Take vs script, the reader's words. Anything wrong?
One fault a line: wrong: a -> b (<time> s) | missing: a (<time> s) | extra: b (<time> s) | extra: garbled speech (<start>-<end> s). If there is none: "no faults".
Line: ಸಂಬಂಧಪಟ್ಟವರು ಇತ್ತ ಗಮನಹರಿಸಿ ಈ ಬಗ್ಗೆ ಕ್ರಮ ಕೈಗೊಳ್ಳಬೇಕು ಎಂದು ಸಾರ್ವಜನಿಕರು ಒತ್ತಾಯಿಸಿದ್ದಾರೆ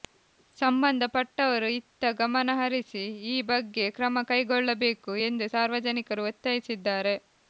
no faults